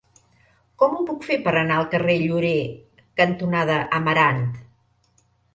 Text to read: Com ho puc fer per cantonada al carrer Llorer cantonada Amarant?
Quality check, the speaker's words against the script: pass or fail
fail